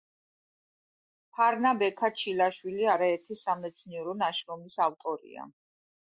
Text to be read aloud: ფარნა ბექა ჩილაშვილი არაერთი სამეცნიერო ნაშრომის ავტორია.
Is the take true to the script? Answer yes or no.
yes